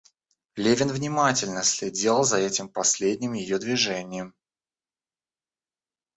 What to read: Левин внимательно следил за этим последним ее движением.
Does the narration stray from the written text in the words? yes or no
no